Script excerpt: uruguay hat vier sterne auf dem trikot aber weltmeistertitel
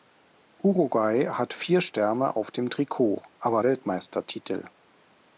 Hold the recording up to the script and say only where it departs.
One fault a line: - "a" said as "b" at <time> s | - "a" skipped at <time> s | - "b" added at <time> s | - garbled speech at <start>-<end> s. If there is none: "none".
none